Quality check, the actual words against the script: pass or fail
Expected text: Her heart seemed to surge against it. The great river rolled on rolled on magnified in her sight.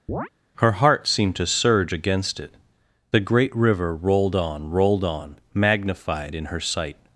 pass